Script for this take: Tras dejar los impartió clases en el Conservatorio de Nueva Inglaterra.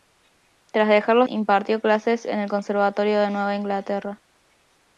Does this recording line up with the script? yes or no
yes